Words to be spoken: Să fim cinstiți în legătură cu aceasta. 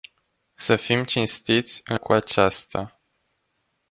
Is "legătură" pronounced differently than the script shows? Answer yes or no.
yes